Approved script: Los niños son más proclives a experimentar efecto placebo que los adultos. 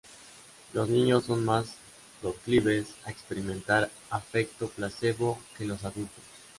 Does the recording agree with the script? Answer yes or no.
yes